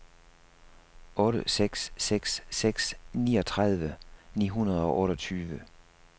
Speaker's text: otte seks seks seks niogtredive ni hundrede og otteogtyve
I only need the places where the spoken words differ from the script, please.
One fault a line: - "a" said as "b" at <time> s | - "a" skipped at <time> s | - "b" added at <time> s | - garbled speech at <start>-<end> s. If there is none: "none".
none